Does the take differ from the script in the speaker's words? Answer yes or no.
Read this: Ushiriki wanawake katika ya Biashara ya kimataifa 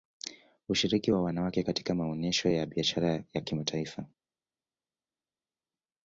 yes